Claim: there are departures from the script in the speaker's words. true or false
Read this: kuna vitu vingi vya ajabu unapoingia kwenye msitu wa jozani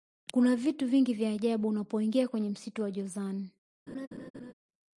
false